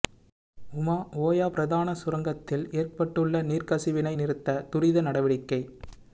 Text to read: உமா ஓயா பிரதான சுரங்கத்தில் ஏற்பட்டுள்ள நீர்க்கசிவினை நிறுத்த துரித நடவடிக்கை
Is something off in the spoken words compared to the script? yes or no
no